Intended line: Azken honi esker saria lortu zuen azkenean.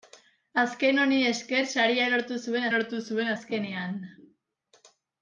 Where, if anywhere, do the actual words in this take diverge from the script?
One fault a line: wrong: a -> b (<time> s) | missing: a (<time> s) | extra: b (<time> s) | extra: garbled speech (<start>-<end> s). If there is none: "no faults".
extra: lortu zuen (2.7 s)